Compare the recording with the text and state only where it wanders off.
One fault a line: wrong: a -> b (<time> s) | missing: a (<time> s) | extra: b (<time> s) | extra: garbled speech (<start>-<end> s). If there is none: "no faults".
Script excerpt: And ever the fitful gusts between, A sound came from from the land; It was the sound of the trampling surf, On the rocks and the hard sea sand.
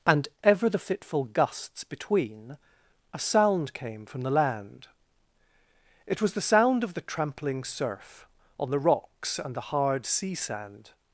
missing: from (4.2 s)